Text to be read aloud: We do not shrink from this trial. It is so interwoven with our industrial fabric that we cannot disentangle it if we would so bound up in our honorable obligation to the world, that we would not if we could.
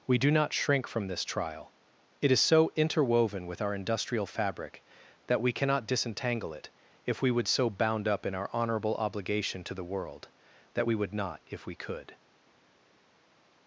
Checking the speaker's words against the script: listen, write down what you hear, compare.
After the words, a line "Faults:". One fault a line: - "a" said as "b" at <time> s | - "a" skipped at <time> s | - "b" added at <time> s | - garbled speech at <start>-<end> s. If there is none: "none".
We do not shrink from this trial. It is so interwoven with our industrial fabric that we cannot disentangle it if we would so bound up in our honorable obligation to the world, that we would not if we could.
Faults:
none